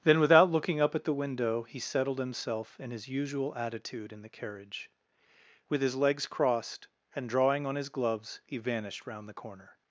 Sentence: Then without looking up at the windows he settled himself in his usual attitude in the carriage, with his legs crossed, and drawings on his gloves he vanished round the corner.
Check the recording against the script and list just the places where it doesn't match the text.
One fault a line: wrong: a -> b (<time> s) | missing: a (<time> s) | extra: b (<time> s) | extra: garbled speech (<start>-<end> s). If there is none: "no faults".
wrong: windows -> window (1.1 s)
wrong: drawings -> drawing (7.3 s)